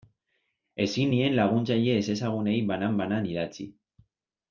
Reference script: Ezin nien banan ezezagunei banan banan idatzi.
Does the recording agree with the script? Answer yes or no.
no